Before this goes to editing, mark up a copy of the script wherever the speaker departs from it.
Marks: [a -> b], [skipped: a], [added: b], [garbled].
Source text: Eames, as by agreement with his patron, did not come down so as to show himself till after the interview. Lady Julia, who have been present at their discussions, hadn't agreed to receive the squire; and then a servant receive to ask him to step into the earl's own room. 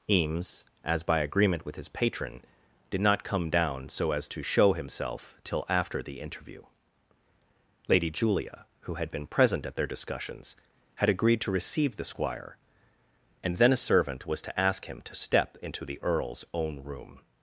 Eames, as by agreement with his patron, did not come down so as to show himself till after the interview. Lady Julia, who [have -> had] been present at their discussions, [hadn't -> had] agreed to receive the squire; and then a servant [receive -> was] to ask him to step into the earl's own room.